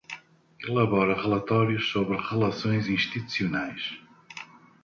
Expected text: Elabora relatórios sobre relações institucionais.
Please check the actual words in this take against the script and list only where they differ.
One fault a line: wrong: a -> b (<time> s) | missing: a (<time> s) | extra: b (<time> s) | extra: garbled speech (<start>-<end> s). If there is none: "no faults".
no faults